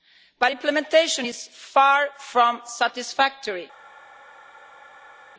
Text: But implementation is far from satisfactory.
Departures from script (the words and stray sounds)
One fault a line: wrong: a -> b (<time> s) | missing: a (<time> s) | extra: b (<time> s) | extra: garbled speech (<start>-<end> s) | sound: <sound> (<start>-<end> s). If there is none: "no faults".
no faults